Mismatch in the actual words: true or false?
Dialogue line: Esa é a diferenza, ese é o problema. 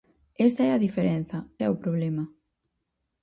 true